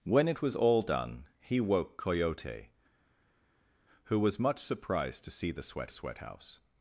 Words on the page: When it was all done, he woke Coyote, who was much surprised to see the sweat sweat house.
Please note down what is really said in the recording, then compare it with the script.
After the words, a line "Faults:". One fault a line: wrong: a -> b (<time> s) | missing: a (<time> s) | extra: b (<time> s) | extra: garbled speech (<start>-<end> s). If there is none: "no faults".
When it was all done, he woke Coyote, who was much surprised to see the sweat sweat house.
Faults:
no faults